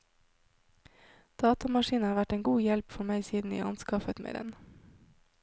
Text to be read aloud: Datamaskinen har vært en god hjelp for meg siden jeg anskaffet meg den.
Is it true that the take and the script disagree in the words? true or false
false